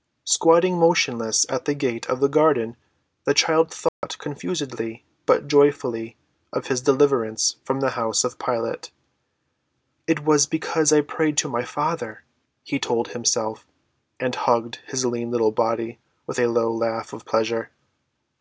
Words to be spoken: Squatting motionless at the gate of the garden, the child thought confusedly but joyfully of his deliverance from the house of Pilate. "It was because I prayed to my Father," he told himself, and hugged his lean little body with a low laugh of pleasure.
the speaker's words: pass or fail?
pass